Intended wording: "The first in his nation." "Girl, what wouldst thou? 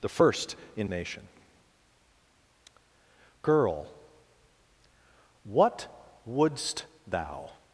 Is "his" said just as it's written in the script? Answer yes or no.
no